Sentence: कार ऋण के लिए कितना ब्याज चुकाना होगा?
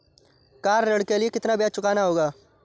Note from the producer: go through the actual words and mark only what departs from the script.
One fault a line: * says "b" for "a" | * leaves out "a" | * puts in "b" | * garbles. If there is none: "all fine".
all fine